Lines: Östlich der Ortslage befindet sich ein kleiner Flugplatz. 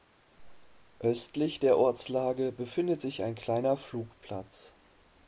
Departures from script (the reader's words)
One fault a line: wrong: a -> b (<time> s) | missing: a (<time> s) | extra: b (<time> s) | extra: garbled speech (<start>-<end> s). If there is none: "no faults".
no faults